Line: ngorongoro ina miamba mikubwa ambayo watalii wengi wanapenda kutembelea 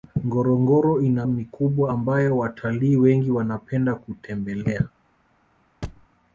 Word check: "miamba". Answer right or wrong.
wrong